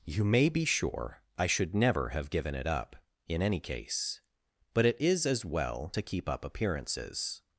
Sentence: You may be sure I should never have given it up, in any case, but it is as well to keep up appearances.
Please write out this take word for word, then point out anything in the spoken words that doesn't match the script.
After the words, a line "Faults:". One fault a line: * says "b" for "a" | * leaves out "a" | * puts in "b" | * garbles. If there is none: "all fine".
You may be sure I should never have given it up, in any case, but it is as well to keep up appearances.
Faults:
all fine